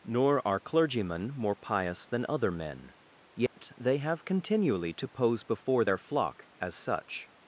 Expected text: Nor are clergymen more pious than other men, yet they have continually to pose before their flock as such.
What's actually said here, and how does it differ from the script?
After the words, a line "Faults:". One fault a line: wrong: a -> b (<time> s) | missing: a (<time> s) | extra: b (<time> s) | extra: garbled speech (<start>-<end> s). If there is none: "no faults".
Nor are clergymen more pious than other men, yet they have continually to pose before their flock as such.
Faults:
no faults